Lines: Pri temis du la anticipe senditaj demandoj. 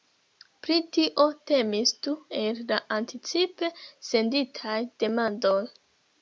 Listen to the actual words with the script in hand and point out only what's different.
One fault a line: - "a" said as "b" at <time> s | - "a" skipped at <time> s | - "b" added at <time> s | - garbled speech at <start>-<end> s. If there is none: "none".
- "tio" added at 0.9 s
- "el" added at 2.4 s